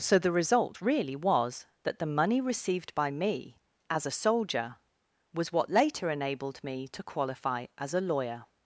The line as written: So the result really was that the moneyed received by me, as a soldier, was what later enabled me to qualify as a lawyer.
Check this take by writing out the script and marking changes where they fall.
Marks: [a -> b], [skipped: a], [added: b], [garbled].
So the result really was that the [moneyed -> money] received by me, as a soldier, was what later enabled me to qualify as a lawyer.